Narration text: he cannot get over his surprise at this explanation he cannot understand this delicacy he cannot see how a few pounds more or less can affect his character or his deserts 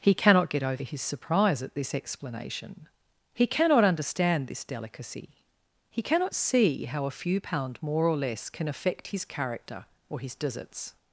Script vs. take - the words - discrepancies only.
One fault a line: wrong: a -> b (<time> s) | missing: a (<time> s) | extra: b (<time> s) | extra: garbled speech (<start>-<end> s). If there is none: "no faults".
wrong: pounds -> pound (7.4 s)